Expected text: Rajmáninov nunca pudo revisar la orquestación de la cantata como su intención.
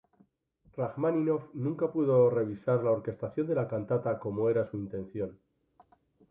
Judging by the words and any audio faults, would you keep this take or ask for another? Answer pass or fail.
fail